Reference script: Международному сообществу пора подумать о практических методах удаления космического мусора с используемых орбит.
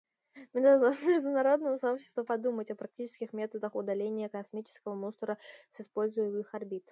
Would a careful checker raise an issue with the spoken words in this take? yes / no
yes